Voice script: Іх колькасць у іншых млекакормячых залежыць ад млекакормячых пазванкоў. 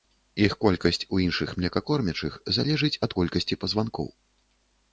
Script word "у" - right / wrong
right